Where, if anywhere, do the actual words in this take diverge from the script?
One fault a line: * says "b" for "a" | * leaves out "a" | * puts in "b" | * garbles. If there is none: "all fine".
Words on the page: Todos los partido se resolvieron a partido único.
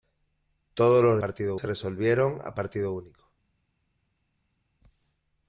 all fine